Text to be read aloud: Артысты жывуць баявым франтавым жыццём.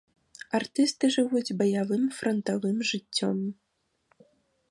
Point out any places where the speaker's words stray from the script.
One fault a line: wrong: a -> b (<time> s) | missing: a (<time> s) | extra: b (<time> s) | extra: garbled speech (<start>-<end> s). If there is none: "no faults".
no faults